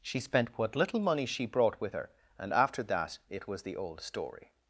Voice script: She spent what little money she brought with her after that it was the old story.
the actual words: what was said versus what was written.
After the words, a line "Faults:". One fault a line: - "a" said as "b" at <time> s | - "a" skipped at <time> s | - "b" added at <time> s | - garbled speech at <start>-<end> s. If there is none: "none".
She spent what little money she brought with her and after that it was the old story.
Faults:
- "and" added at 2.4 s